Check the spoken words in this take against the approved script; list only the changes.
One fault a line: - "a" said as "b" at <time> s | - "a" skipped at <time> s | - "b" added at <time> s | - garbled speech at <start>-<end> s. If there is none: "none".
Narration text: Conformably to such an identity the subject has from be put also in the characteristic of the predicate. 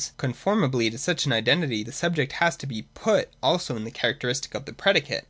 - "from" said as "to" at 2.5 s